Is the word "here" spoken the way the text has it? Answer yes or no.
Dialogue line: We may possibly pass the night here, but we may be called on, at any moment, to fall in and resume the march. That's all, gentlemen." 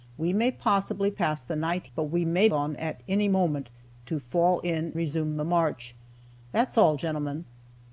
no